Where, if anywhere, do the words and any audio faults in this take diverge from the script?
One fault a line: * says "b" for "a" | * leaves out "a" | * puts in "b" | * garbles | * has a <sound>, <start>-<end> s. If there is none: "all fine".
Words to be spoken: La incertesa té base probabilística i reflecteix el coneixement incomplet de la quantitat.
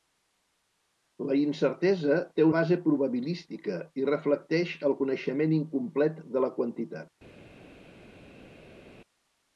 all fine